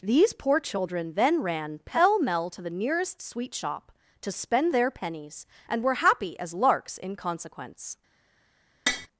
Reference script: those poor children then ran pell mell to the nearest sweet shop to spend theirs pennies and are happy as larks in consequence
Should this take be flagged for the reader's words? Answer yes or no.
yes